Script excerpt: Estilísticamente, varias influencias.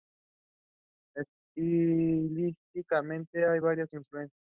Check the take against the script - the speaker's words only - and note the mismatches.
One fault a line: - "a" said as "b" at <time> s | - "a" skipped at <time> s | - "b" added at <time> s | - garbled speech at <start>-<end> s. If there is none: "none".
- "hay" added at 3.4 s